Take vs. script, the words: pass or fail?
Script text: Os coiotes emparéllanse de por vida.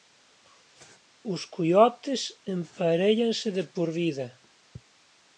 pass